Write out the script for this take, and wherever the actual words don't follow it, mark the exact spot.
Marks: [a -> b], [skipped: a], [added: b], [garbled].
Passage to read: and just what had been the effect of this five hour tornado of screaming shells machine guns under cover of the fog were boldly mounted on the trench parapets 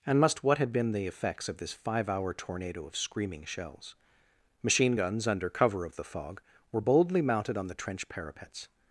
and [just -> must] what had been the [effect -> effects] of this five hour tornado of screaming shells machine guns under cover of the fog were boldly mounted on the trench parapets